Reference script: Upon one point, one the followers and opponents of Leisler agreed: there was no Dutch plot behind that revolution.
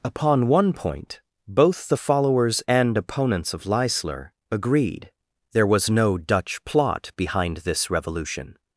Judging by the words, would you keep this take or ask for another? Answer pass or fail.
fail